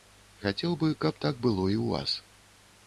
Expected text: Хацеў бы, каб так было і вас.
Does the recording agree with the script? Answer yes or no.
no